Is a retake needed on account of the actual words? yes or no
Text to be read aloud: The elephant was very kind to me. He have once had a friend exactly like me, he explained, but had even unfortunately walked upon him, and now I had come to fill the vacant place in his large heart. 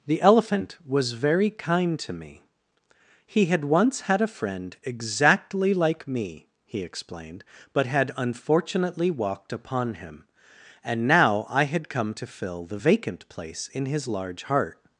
yes